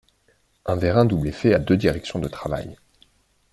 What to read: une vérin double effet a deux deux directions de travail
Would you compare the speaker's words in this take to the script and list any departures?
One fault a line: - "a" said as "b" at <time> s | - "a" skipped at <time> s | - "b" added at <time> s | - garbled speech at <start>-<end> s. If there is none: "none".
- "une" said as "un" at 0.7 s
- "deux" skipped at 1.7 s